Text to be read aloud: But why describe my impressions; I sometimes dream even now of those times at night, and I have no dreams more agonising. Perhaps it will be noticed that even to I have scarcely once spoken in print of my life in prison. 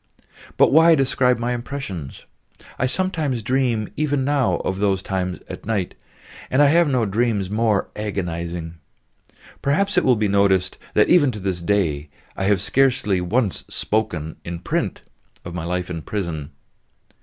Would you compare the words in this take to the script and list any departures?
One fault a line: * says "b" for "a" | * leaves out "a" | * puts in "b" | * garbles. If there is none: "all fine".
* puts in "this day"